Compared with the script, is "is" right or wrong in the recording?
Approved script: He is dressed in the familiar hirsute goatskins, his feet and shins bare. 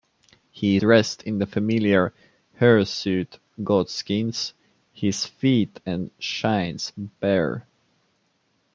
wrong